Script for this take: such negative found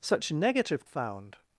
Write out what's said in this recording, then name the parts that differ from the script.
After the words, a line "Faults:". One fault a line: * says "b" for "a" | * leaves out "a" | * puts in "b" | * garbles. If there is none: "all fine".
such negative found
Faults:
all fine